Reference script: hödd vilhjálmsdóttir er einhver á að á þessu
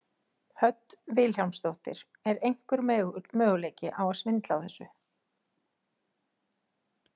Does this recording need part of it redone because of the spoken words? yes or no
yes